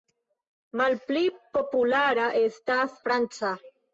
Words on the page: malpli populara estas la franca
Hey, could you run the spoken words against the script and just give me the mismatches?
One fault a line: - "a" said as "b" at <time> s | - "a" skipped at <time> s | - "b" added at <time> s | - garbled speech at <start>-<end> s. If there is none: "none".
- "la" skipped at 3.0 s